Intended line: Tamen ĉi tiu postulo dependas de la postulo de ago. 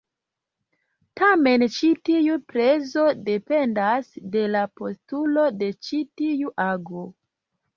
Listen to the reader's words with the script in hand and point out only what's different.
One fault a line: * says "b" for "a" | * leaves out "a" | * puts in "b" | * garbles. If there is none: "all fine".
* says "prezo" for "postulo"
* puts in "ĉi tiu"